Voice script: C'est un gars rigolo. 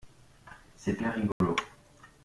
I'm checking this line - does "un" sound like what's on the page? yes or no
no